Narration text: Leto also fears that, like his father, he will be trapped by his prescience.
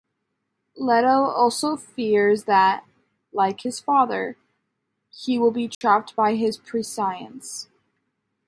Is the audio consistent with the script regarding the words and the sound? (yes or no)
no